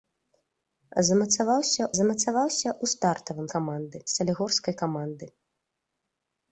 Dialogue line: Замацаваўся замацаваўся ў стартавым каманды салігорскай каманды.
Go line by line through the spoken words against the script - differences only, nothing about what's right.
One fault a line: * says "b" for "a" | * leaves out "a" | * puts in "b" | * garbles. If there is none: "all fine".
all fine